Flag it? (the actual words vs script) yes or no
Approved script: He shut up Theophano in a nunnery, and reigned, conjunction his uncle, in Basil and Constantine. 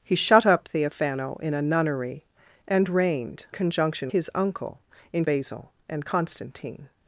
no